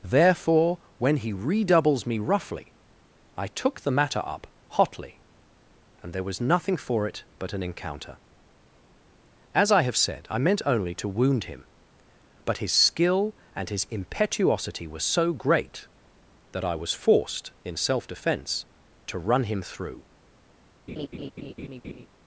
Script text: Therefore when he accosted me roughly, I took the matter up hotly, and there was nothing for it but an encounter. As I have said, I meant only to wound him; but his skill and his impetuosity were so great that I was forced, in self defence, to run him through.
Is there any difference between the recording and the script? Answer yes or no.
yes